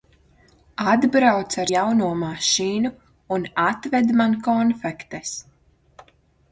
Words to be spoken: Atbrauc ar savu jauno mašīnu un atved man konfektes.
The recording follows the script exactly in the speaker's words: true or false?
false